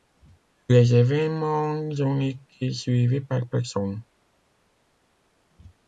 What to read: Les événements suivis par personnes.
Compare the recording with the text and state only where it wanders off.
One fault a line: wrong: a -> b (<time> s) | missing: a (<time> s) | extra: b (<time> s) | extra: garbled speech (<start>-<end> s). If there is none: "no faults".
extra: ont été (1.7 s)